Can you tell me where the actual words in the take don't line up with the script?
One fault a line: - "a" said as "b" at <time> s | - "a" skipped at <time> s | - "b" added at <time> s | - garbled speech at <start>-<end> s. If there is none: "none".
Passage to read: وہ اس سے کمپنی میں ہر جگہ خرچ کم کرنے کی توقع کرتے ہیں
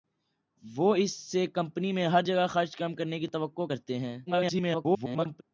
- garbled speech at 4.3-5.4 s